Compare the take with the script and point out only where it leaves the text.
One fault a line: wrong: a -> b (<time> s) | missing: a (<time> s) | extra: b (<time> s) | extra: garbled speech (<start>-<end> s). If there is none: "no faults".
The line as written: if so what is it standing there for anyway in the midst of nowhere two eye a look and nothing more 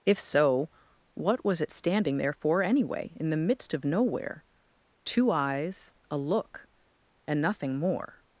wrong: is -> was (1.4 s)
wrong: eye -> eyes (5.3 s)